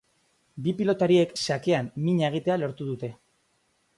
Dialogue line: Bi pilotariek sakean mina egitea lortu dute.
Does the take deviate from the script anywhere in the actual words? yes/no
no